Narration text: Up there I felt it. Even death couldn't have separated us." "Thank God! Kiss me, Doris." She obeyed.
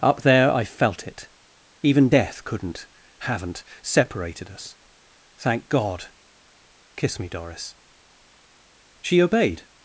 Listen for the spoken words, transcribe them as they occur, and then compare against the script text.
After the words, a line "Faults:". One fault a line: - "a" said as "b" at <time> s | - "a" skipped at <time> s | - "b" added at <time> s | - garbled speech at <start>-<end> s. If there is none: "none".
Up there I felt it. Even death couldn't haven't separated us." "Thank God! Kiss me, Doris." She obeyed.
Faults:
- "have" said as "haven't" at 3.2 s